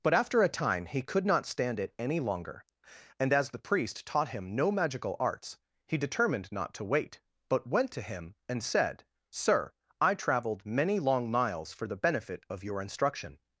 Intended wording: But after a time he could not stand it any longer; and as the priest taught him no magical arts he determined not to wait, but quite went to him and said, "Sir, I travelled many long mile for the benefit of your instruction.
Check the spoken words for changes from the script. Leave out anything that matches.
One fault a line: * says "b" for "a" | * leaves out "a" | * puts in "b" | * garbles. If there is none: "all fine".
* leaves out "quite"
* says "miles" for "mile"